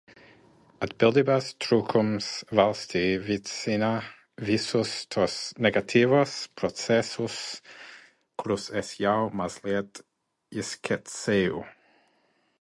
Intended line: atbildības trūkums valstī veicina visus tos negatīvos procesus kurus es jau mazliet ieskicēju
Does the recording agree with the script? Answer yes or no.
yes